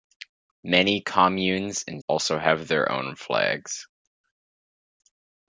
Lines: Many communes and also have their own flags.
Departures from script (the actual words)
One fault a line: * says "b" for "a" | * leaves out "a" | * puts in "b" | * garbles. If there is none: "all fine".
all fine